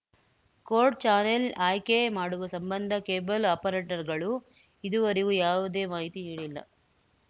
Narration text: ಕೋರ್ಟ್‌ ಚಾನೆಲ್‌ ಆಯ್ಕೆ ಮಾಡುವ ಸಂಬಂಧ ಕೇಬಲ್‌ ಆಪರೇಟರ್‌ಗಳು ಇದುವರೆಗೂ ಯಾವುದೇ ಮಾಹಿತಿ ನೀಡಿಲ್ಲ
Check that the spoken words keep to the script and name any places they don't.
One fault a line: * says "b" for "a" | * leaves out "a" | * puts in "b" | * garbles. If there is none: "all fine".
all fine